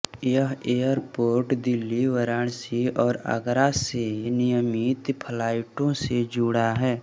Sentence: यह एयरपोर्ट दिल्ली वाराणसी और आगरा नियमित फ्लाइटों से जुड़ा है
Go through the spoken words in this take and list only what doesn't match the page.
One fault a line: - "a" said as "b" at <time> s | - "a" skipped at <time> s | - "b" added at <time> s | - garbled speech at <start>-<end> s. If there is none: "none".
- "से" added at 3.8 s